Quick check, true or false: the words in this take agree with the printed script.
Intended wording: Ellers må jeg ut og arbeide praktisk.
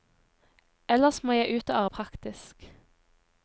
false